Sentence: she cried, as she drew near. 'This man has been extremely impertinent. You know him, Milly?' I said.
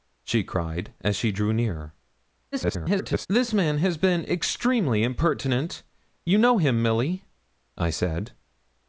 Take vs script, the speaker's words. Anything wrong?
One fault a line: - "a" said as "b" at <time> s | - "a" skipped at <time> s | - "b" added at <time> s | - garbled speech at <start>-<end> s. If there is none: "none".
- garbled speech at 2.5-3.3 s